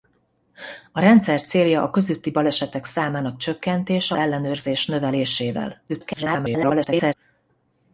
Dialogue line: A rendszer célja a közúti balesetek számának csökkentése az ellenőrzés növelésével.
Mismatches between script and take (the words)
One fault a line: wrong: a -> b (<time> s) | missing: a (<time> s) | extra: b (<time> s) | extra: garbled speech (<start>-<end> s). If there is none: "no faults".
missing: az (4.2 s)
extra: garbled speech (5.9-7.1 s)